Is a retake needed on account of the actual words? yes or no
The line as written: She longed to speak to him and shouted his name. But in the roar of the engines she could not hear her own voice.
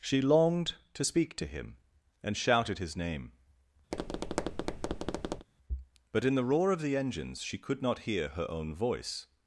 no